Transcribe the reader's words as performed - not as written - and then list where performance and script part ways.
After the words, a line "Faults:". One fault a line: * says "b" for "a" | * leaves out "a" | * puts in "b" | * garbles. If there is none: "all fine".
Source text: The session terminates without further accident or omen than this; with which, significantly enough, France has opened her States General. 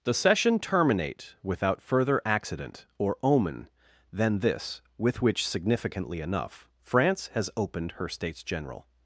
The session terminate without further accident or omen than this; with which, significantly enough, France has opened her States General.
Faults:
* says "terminate" for "terminates"